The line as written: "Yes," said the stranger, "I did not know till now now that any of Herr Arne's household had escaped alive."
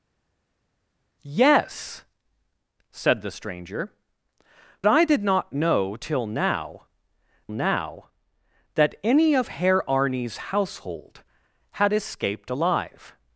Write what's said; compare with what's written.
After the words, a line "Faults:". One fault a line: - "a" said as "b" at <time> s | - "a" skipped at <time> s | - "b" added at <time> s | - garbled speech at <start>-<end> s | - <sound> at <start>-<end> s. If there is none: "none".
"Yes," said the stranger, "I did not know till now now that any of Herr Arne's household had escaped alive."
Faults:
none